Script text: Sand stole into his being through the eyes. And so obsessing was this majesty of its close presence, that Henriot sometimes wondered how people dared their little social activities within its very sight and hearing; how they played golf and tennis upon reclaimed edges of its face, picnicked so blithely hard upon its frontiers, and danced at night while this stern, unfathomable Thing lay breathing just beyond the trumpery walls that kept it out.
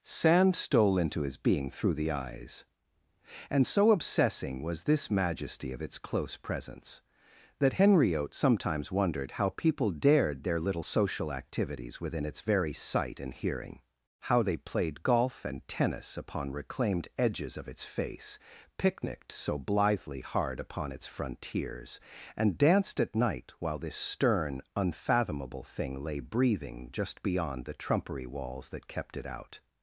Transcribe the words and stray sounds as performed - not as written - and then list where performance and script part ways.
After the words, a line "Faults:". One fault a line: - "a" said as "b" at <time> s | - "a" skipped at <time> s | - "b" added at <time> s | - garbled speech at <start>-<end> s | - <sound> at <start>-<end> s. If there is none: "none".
Sand stole into his being through the eyes. And so obsessing was this majesty of its close presence, that Henriot sometimes wondered how people dared their little social activities within its very sight and hearing; how they played golf and tennis upon reclaimed edges of its face, picnicked so blithely hard upon its frontiers, and danced at night while this stern, unfathomable Thing lay breathing just beyond the trumpery walls that kept it out.
Faults:
none